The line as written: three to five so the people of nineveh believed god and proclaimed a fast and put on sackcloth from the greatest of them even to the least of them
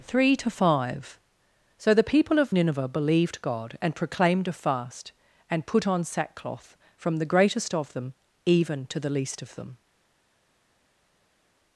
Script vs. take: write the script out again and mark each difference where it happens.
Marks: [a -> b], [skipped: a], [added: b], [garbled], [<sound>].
three to five so the people of nineveh believed god and proclaimed a fast and put on sackcloth from the greatest of them even to the least of them